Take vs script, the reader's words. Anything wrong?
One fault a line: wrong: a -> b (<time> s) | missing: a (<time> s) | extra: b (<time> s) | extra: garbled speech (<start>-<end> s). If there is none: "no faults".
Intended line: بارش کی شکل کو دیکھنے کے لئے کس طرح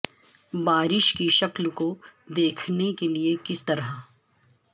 no faults